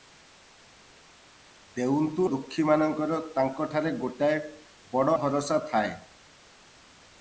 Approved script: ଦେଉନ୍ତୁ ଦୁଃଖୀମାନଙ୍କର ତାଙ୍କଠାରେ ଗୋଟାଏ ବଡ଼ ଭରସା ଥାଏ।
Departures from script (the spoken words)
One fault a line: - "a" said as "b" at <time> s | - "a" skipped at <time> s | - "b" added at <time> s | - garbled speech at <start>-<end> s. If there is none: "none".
none